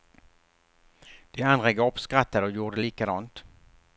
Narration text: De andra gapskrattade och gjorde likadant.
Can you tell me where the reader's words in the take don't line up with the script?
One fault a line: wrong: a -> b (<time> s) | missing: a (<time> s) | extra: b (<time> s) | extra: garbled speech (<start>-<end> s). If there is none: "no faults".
no faults